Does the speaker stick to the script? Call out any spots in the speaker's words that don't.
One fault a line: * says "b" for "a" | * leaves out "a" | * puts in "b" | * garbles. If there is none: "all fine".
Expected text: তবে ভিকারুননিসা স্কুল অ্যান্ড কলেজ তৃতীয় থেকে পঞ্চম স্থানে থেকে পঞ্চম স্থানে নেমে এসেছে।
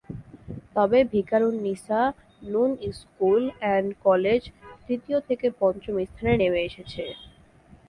* puts in "নূন"
* leaves out "থেকে পঞ্চম স্থানে"